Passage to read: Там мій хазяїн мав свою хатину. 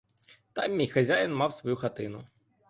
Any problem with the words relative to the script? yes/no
no